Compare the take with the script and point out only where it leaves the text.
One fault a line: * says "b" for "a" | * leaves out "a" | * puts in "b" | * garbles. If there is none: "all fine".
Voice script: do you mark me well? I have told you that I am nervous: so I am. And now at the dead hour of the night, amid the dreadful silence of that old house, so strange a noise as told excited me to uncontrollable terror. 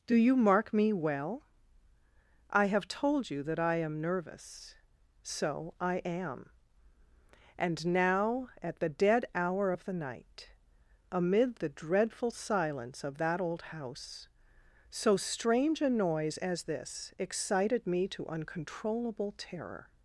* says "this" for "told"